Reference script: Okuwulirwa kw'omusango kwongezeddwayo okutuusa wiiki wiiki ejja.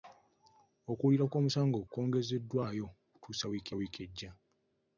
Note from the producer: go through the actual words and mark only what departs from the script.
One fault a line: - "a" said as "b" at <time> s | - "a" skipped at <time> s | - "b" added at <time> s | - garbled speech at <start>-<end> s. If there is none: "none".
none